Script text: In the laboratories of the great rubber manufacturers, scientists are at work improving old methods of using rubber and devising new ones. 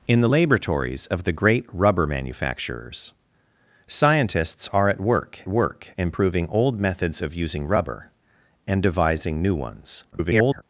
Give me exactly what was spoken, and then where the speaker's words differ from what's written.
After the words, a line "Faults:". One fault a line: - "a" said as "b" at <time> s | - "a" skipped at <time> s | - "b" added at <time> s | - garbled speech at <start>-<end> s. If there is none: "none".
In the laboratories of the great rubber manufacturers, scientists are at work work improving old methods of using rubber and devising new ones. [garbled]
Faults:
- "work" added at 5.5 s
- garbled speech at 10.1-10.6 s